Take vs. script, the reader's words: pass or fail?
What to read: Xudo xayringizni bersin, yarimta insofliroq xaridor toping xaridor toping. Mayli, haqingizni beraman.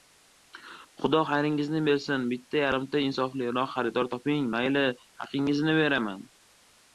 fail